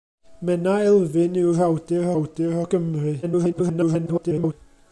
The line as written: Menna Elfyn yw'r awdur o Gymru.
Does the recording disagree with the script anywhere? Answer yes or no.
yes